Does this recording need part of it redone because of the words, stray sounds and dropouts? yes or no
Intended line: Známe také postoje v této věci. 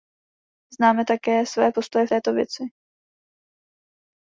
yes